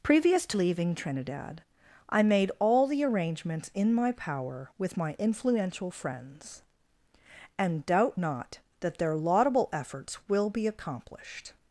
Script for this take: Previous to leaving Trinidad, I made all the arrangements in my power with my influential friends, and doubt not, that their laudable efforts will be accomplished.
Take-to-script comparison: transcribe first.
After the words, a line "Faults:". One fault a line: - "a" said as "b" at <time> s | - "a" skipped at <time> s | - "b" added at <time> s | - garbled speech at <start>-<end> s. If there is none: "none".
Previous to leaving Trinidad, I made all the arrangements in my power with my influential friends, and doubt not, that their laudable efforts will be accomplished.
Faults:
none